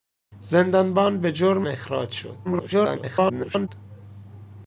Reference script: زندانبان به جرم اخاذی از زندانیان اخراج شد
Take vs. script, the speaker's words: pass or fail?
fail